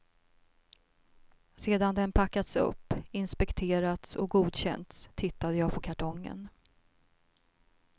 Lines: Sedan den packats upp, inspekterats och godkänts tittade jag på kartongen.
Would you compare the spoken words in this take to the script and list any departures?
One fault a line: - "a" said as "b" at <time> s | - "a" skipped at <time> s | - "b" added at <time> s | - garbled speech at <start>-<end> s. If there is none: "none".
none